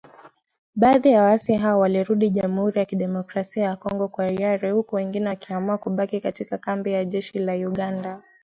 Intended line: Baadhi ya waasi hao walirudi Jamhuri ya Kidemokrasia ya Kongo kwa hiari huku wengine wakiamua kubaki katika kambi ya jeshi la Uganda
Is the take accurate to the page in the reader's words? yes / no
yes